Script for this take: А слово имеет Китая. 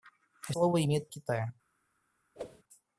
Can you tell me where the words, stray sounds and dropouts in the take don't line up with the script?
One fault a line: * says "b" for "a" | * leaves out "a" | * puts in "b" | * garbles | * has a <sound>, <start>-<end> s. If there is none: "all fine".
* has a whoosh, 2.4-2.6 s